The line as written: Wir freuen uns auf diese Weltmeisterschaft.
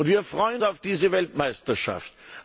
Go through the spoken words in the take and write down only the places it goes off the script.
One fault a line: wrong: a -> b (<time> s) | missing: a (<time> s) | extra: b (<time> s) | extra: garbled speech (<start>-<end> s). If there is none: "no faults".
missing: uns (0.6 s)